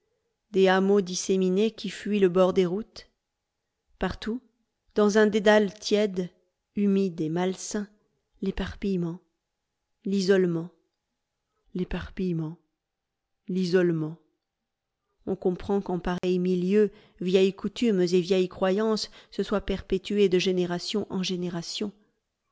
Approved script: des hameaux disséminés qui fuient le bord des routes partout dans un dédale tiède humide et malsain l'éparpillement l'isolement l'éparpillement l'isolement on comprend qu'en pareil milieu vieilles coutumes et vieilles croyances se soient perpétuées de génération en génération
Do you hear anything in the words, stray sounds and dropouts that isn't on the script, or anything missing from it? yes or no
yes